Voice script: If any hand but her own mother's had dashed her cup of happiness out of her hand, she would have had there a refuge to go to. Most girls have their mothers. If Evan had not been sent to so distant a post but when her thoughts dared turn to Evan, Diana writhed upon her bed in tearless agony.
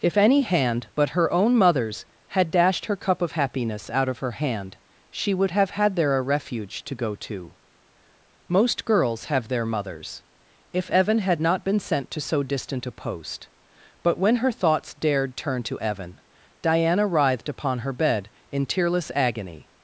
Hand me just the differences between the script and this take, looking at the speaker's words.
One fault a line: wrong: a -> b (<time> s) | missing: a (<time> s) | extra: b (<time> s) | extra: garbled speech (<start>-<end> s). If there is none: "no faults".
no faults